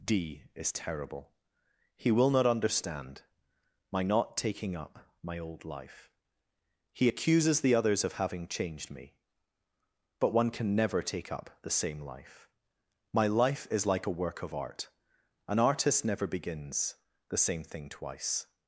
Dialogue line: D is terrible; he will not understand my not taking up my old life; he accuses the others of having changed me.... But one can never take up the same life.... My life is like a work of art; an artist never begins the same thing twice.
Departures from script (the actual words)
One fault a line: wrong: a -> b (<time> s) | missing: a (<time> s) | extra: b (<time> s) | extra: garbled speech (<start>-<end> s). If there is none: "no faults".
no faults